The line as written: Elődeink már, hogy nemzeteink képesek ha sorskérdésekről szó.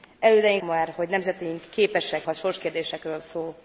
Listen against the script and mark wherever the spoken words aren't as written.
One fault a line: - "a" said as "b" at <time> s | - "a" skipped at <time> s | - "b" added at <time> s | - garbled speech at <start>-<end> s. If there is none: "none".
none